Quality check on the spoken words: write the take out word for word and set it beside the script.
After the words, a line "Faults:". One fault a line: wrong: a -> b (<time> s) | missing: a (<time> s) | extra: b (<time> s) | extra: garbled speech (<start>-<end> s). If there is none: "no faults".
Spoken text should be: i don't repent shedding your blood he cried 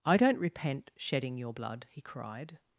i don't repent shedding your blood he cried
Faults:
no faults